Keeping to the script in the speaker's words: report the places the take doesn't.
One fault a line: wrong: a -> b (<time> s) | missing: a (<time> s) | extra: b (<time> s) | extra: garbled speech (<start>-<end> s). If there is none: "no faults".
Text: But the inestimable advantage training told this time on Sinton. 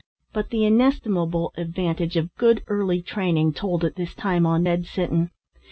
extra: of good early (2.2 s)
extra: at (3.8 s)
extra: Ned (4.6 s)